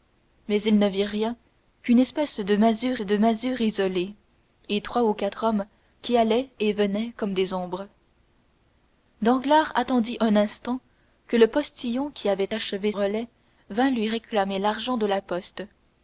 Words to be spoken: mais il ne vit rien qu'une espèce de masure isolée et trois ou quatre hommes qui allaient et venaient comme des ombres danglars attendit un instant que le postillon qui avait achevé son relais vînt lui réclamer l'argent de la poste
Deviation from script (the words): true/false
true